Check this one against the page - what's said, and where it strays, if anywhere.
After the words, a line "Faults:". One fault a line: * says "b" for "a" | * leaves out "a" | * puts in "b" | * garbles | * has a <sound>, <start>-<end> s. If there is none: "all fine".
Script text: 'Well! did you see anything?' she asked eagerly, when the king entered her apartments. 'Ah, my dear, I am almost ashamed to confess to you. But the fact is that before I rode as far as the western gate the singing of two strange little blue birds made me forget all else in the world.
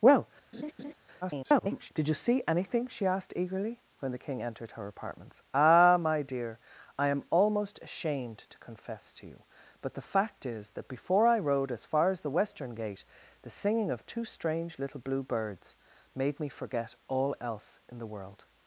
'Well! [garbled] did you see anything?' she asked eagerly, when the king entered her apartments. 'Ah, my dear, I am almost ashamed to confess to you. But the fact is that before I rode as far as the western gate the singing of two strange little blue birds made me forget all else in the world.
Faults:
* has a laugh, 0.5-0.9 s
* garbles